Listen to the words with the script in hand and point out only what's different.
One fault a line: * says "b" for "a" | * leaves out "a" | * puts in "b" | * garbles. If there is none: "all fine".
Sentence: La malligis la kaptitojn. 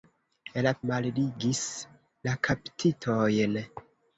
all fine